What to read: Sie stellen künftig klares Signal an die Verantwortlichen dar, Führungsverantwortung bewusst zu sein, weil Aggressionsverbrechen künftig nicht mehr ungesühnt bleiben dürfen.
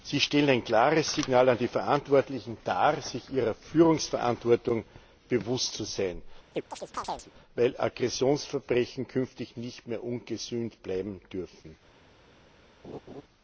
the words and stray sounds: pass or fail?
fail